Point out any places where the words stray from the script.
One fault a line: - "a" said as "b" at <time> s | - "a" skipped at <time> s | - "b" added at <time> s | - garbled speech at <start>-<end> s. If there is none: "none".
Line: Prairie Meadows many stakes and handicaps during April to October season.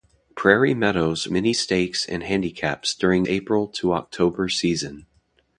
none